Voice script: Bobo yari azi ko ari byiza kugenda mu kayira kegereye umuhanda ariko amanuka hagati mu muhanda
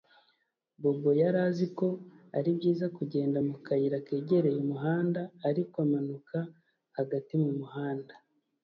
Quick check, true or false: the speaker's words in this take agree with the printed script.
true